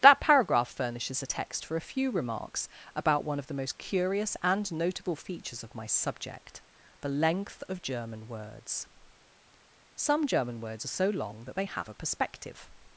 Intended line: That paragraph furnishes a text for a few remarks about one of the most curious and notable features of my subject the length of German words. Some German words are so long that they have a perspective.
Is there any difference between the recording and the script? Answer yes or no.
no